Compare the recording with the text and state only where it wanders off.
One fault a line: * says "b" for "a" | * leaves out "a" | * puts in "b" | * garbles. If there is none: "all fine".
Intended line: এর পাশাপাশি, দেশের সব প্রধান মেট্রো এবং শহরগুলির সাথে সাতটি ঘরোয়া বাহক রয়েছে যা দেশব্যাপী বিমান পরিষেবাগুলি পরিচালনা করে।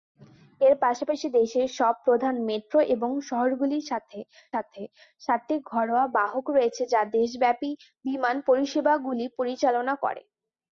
* puts in "সাথে"